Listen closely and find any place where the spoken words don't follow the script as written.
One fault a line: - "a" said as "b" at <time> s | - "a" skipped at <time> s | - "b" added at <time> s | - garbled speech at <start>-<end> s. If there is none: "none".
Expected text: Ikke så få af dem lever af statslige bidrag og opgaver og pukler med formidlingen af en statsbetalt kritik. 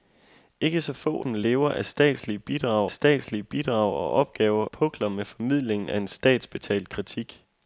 - "af" skipped at 1.2 s
- "statslige bidrag" added at 2.9 s
- "og" skipped at 4.7 s